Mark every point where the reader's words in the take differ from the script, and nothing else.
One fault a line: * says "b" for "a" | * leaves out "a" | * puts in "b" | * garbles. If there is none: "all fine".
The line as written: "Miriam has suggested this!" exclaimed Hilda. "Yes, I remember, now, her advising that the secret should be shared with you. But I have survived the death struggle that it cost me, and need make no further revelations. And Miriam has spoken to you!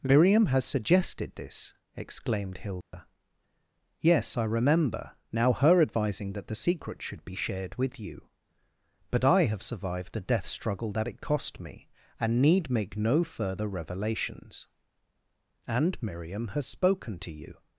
all fine